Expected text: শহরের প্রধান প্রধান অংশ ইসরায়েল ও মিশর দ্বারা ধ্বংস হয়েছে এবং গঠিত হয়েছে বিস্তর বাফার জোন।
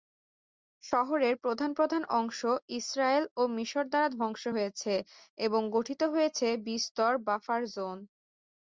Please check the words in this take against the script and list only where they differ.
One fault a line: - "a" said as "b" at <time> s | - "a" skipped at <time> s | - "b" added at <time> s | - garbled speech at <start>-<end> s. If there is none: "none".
none